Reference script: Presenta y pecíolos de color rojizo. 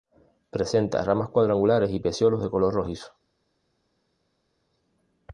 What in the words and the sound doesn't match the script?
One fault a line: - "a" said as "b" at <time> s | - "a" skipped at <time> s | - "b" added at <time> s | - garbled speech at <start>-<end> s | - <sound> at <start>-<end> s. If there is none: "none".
- "ramas cuadrangulares" added at 1.0 s